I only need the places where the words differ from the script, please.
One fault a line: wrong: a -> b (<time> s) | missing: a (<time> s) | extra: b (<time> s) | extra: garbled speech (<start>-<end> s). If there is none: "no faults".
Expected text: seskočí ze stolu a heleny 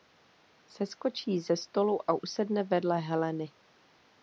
extra: usedne vedle (2.2 s)